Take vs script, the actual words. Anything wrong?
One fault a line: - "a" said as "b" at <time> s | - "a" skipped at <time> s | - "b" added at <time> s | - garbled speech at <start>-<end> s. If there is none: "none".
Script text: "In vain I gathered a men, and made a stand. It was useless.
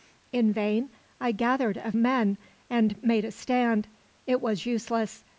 none